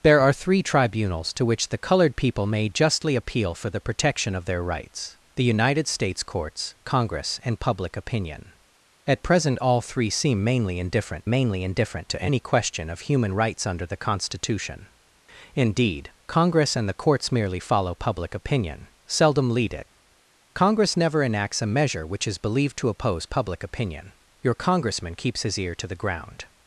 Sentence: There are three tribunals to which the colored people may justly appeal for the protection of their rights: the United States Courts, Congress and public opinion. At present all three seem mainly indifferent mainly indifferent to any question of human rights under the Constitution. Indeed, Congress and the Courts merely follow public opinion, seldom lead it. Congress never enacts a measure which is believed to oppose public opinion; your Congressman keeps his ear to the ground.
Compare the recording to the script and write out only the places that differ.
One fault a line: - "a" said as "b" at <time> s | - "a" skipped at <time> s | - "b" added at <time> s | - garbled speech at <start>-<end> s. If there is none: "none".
none